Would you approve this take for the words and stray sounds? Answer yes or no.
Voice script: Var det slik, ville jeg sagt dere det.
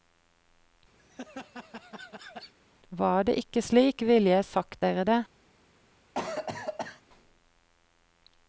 no